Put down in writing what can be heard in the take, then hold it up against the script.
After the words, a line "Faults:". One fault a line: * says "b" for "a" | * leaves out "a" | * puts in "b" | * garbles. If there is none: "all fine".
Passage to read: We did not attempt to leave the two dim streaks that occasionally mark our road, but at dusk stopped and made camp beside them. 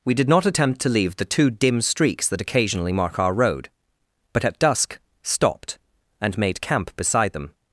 We did not attempt to leave the two dim streaks that occasionally mark our road, but at dusk stopped and made camp beside them.
Faults:
all fine